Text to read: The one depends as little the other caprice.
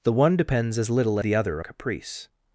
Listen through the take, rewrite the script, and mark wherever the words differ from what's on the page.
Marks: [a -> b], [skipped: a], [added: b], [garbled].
The one depends as little the other caprice.